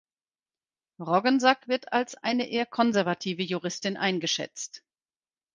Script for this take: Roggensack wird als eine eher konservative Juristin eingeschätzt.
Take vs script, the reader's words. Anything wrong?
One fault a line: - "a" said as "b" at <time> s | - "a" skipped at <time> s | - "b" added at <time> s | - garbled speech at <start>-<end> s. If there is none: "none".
none